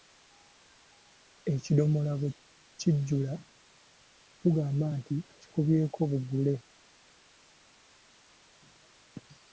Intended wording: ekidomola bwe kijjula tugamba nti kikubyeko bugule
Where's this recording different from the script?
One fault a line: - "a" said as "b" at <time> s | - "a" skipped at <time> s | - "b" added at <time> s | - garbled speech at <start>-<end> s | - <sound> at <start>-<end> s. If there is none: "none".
none